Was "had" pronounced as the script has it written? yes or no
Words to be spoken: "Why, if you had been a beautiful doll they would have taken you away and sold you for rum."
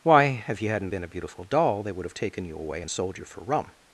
no